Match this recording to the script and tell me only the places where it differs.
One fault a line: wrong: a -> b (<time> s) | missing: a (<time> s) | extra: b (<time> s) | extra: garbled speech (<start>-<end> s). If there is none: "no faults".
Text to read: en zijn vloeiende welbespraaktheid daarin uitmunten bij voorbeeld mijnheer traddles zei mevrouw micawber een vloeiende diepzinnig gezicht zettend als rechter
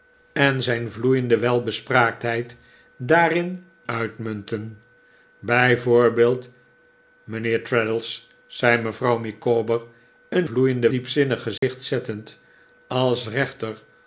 no faults